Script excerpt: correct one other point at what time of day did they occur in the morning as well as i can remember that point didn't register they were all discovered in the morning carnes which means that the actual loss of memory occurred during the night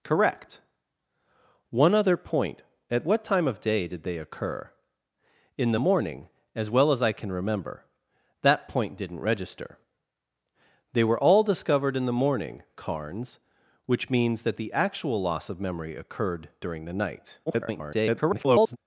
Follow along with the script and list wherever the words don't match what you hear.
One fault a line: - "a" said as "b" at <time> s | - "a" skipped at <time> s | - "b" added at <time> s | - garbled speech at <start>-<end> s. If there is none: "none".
- garbled speech at 17.5-18.8 s